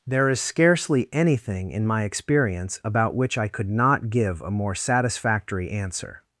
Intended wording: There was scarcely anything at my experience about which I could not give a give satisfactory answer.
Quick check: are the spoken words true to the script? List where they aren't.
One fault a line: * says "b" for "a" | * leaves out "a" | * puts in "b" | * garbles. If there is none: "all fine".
* says "is" for "was"
* says "in" for "at"
* says "more" for "give"